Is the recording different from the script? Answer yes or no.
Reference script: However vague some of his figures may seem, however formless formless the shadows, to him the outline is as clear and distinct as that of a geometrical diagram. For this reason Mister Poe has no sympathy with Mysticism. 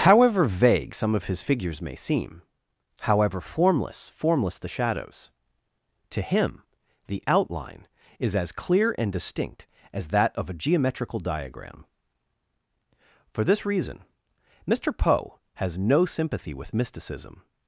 no